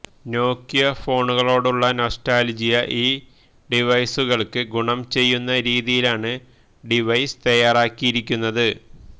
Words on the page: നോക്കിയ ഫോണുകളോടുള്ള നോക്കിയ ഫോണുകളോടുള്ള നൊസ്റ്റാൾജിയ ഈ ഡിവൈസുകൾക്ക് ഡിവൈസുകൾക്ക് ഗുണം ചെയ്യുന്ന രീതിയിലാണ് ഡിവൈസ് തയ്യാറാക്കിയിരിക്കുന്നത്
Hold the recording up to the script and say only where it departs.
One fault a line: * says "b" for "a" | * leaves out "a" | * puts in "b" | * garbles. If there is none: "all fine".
* leaves out "നോക്കിയ ഫോണുകളോടുള്ള"
* leaves out "ഡിവൈസുകൾക്ക്"